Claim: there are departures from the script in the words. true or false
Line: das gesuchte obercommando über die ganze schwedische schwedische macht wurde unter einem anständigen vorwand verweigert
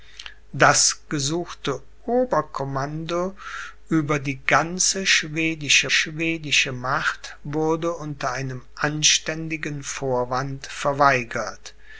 false